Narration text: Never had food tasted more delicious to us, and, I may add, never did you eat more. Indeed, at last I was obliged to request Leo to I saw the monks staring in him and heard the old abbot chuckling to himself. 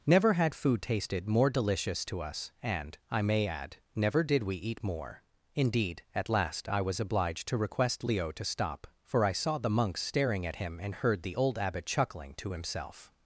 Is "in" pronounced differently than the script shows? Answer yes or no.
yes